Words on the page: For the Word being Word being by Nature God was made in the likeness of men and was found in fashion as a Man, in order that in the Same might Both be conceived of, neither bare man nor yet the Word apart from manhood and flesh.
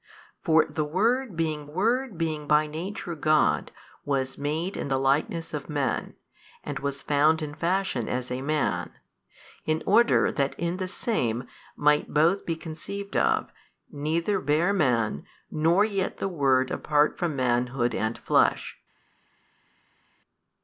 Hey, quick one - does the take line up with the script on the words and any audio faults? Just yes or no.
yes